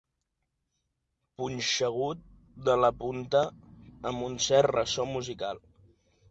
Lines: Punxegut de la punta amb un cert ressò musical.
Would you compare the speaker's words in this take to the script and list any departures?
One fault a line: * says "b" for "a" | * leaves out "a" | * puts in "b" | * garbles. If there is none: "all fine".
all fine